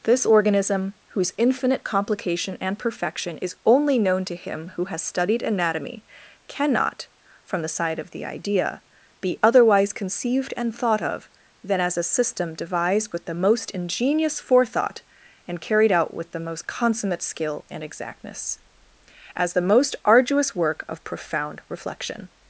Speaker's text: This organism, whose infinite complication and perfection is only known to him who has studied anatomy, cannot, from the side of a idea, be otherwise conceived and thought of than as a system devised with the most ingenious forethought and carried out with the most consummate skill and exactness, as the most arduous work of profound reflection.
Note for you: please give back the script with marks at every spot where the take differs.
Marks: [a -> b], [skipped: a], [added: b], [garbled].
This organism, whose infinite complication and perfection is only known to him who has studied anatomy, cannot, from the side of [a -> the] idea, be otherwise conceived and thought of than as a system devised with the most ingenious forethought and carried out with the most consummate skill and exactness, as the most arduous work of profound reflection.